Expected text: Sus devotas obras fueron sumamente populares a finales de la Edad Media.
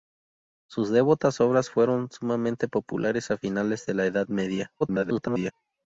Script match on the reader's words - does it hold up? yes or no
no